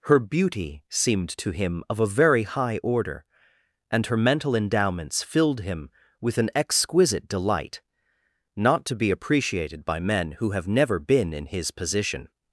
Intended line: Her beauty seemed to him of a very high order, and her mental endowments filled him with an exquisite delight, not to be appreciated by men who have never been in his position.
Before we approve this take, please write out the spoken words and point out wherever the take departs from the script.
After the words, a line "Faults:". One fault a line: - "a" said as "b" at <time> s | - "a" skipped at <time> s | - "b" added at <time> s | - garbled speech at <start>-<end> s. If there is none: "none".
Her beauty seemed to him of a very high order, and her mental endowments filled him with an exquisite delight, not to be appreciated by men who have never been in his position.
Faults:
none